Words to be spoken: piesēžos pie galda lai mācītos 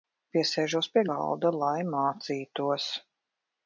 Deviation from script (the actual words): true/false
false